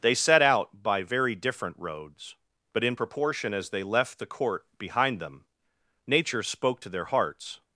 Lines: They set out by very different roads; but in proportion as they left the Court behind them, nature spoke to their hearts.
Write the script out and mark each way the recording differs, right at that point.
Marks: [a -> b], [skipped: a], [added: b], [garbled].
They set out by very different roads; but in proportion as they left the Court behind them, nature spoke to their hearts.